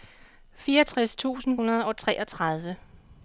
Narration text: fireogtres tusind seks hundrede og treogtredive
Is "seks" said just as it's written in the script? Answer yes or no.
no